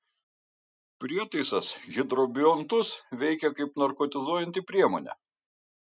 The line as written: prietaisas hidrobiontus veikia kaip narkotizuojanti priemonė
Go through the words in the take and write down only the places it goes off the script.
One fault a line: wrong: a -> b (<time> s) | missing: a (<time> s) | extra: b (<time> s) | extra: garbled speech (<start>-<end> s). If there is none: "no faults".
no faults